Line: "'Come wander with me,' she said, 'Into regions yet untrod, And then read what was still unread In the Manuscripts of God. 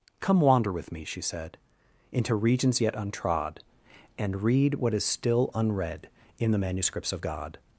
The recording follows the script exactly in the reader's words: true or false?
false